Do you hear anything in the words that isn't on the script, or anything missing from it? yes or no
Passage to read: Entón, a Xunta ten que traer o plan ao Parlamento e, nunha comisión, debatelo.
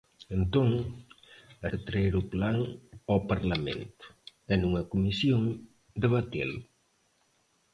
yes